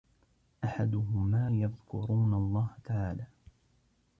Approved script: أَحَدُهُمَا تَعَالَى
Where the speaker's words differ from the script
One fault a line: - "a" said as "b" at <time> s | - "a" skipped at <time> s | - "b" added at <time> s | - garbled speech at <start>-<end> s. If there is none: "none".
- "يَذْكُرُونَ اللَّهَ" added at 1.5 s